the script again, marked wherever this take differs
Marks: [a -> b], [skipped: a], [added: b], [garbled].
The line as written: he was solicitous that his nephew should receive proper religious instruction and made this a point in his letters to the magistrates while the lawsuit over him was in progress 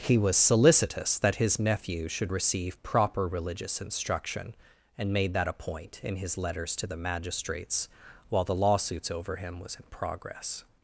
he was solicitous that his nephew should receive proper religious instruction and made [this -> that] a point in his letters to the magistrates while the [lawsuit -> lawsuits] over him was in progress